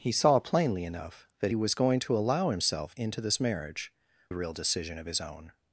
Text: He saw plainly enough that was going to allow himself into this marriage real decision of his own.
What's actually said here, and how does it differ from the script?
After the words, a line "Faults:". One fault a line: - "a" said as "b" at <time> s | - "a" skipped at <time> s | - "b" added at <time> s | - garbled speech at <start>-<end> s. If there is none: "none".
He saw plainly enough that was going to allow himself into this marriage real decision of his own.
Faults:
none